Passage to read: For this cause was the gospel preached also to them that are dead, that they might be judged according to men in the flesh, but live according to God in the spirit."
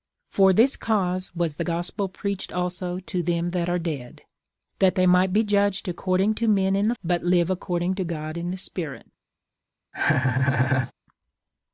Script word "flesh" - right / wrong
wrong